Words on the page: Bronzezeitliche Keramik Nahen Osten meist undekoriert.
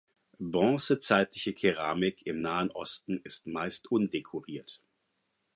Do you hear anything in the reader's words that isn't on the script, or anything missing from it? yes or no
yes